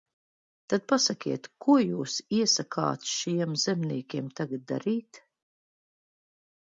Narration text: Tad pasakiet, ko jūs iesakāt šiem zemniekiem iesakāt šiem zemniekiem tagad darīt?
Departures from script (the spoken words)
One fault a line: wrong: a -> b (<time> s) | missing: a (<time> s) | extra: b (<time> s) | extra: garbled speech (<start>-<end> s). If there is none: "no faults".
missing: iesakāt šiem zemniekiem (4.3 s)